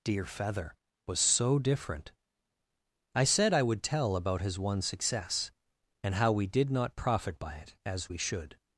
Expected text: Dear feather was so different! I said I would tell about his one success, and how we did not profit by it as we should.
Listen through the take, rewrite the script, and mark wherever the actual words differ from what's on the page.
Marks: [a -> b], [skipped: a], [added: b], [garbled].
Dear feather was so different! I said I would tell about his one success, and how we did not profit by it as we should.